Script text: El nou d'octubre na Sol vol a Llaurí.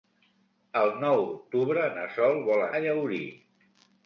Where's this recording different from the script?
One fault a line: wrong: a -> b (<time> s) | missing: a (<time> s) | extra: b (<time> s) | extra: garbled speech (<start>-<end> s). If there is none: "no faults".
no faults